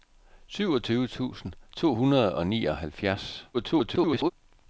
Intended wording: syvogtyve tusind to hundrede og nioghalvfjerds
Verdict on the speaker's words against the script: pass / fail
fail